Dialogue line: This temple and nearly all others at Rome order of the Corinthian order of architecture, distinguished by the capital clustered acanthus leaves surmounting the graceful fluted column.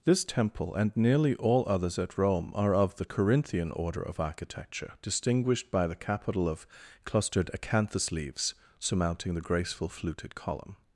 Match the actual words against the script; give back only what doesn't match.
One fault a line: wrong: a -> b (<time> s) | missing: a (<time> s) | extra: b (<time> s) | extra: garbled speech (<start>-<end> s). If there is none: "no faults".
wrong: order -> are (2.5 s)
extra: of (6.5 s)